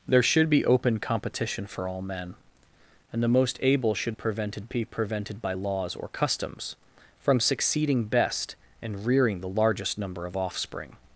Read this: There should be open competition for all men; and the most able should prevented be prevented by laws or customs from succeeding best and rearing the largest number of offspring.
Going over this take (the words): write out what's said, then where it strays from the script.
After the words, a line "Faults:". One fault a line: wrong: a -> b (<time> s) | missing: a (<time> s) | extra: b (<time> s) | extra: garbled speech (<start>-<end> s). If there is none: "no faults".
There should be open competition for all men; and the most able should prevented be prevented by laws or customs from succeeding best and rearing the largest number of offspring.
Faults:
no faults